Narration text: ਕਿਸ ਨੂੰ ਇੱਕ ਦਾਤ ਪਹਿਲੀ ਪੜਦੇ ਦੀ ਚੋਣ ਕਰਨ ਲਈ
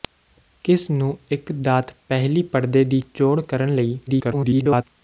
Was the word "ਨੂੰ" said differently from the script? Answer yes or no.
no